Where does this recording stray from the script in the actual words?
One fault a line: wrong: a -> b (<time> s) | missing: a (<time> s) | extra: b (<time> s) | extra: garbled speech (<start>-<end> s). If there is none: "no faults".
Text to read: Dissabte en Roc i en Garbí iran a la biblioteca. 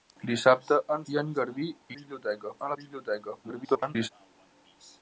missing: Roc (1.0 s)
wrong: iran -> biblioteca (2.0 s)
extra: garbled speech (3.4-4.1 s)